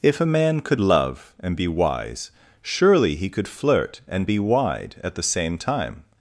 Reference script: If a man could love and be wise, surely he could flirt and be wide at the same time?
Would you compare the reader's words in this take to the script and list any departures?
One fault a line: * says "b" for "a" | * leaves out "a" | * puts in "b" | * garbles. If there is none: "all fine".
all fine